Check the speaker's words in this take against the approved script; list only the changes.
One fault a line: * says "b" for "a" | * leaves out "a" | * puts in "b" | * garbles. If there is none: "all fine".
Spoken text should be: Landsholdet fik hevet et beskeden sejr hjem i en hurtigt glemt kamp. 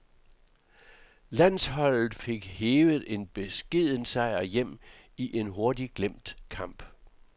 * says "en" for "et"